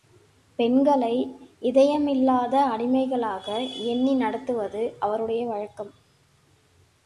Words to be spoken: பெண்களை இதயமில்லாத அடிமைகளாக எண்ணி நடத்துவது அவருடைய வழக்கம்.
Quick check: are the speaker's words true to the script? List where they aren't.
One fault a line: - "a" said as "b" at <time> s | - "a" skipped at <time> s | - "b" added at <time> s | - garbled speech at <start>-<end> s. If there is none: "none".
none